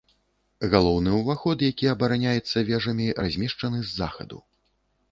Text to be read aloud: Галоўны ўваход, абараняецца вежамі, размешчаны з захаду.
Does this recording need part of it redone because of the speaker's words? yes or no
yes